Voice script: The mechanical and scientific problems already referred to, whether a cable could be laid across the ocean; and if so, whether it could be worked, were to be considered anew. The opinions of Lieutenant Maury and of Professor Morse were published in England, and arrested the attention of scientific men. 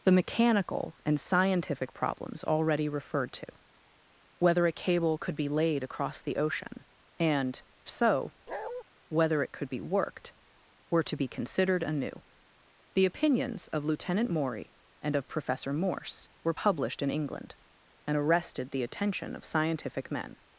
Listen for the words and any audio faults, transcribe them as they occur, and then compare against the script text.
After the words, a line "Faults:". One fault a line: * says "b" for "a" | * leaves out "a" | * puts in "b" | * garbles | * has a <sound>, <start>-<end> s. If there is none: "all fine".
The mechanical and scientific problems already referred to, whether a cable could be laid across the ocean; and so, whether it could be worked, were to be considered anew. The opinions of Lieutenant Maury and of Professor Morse were published in England, and arrested the attention of scientific men.
Faults:
* leaves out "if"
* has a bark, 8.5-8.8 s